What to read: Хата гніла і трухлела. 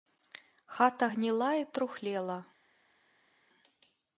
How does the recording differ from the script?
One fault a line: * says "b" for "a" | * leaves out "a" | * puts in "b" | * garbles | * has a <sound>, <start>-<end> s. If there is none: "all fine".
all fine